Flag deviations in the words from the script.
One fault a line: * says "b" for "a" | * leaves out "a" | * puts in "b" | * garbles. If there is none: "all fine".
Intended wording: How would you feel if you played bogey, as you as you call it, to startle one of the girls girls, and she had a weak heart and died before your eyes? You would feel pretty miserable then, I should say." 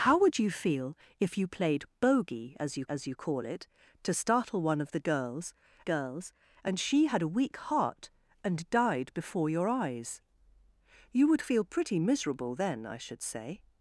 all fine